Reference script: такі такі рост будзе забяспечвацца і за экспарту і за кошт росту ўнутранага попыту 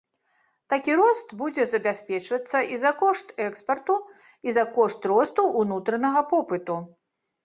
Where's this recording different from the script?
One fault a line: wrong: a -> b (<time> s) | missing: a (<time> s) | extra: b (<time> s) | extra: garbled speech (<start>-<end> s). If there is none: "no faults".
missing: такі (0.9 s)
extra: кошт (3.0 s)